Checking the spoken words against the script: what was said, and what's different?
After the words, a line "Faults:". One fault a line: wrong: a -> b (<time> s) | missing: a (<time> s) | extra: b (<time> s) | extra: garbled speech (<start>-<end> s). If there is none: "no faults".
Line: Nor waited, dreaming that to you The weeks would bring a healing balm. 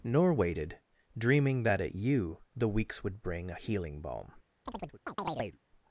Nor waited, dreaming that at you The weeks would bring a healing balm.
Faults:
wrong: to -> at (1.8 s)